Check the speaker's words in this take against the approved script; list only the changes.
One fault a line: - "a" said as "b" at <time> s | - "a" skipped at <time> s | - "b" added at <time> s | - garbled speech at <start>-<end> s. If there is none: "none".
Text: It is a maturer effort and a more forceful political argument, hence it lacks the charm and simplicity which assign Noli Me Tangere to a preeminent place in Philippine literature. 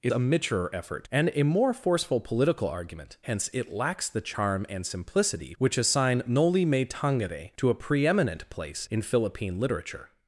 - "is" skipped at 0.1 s